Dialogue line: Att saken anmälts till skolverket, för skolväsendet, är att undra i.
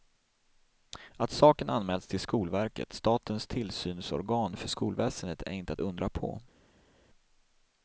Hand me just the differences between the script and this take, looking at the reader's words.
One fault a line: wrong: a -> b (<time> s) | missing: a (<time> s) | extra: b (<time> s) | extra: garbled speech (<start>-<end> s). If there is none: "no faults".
extra: statens tillsynsorgan (2.9 s)
extra: inte (5.5 s)
wrong: i -> på (6.1 s)